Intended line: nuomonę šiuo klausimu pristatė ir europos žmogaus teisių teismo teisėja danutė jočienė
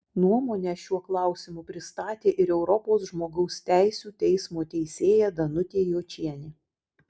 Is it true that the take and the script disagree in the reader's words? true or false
false